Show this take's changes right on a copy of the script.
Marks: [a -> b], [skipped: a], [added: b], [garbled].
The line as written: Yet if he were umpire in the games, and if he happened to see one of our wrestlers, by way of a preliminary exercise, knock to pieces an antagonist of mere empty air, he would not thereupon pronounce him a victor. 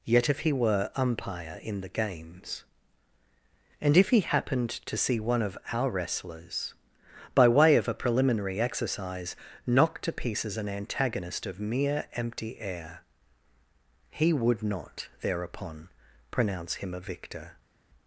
Yet if he were umpire in the games, and if he happened to see one of our wrestlers, by way of a preliminary exercise, knock to pieces an antagonist of mere empty air, he would not thereupon pronounce him a victor.